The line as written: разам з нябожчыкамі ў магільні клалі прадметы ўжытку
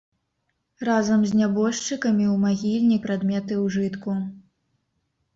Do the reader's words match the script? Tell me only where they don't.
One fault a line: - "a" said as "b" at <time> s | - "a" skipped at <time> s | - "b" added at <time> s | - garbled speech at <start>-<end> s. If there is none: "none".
- "клалі" skipped at 3.0 s